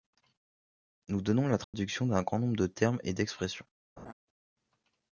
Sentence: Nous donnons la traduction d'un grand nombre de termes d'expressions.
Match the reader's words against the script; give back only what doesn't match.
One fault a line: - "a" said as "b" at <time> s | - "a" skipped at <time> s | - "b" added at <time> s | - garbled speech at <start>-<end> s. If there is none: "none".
- "et" added at 3.0 s